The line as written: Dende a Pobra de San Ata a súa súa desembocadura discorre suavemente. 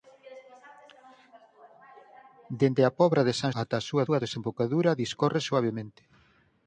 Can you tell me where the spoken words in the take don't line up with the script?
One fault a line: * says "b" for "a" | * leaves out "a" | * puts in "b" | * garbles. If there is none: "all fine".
all fine